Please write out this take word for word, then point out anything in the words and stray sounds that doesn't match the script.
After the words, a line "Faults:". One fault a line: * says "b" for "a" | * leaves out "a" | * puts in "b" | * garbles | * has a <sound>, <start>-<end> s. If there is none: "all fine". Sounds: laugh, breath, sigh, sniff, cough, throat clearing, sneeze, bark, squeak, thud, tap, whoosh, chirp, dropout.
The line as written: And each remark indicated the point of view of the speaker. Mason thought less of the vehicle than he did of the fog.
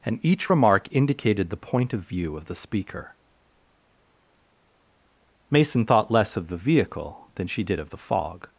And each remark indicated the point of view of the speaker. Mason thought less of the vehicle than she did of the fog.
Faults:
* says "she" for "he"